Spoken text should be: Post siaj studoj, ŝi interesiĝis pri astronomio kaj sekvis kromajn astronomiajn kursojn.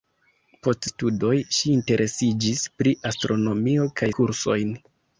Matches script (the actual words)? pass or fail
fail